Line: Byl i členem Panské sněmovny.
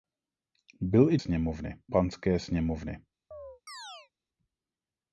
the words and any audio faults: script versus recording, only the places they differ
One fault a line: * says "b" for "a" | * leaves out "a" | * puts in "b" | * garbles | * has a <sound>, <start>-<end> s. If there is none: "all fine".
* says "sněmovny" for "členem"
* has a chirp, 3.3-4.1 s